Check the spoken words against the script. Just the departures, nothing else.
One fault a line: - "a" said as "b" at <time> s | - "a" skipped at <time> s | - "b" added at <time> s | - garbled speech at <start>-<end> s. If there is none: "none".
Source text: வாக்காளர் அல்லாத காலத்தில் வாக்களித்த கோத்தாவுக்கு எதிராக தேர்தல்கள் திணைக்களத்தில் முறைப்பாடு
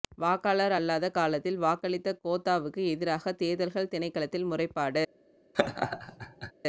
none